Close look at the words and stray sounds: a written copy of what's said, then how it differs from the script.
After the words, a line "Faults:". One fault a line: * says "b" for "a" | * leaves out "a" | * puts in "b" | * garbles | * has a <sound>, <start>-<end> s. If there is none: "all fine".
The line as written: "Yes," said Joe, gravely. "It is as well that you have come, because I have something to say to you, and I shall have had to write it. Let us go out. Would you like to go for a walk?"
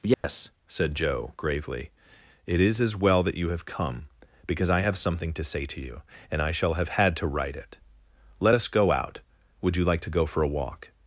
"Yes," said Joe, gravely. "It is as well that you have come, because I have something to say to you, and I shall have had to write it. Let us go out. Would you like to go for a walk?"
Faults:
* has a dropout, 0.1-0.2 s